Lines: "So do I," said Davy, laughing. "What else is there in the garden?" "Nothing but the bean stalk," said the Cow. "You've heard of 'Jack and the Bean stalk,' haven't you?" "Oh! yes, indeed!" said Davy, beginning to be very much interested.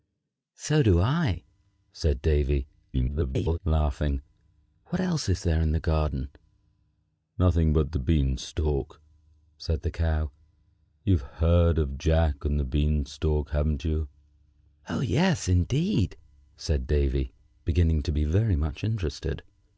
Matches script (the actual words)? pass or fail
fail